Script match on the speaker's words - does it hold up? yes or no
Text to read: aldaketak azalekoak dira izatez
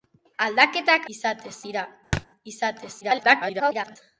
no